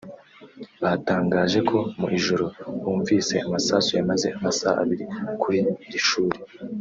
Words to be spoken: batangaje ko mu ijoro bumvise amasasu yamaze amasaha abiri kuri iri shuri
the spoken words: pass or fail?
pass